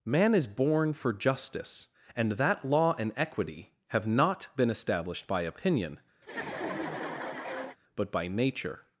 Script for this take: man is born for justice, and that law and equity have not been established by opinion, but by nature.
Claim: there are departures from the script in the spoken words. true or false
false